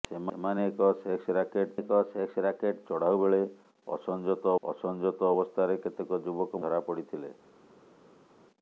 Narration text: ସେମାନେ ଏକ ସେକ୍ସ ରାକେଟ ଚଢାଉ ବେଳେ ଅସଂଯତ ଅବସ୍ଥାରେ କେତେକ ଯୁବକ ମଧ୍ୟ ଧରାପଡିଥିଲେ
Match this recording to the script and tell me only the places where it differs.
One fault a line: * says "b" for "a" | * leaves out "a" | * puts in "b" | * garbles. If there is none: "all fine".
* puts in "ଏକ ସେକ୍ସ ରାକେଟ"
* puts in "ଅସଂଯତ"
* leaves out "ମଧ୍ୟ"